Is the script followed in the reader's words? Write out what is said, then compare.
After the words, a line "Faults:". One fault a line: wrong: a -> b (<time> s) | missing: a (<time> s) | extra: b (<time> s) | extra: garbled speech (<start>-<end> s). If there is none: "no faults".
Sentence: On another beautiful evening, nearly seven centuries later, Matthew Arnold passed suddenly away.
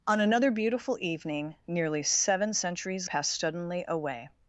On another beautiful evening, nearly seven centuries passed suddenly away.
Faults:
missing: later Matthew Arnold (3.1 s)